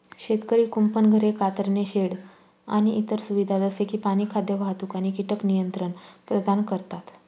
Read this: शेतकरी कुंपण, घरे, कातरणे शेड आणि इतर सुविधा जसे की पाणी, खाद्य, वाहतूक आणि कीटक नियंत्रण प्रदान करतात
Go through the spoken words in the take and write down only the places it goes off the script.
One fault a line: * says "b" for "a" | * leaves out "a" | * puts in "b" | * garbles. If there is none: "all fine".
all fine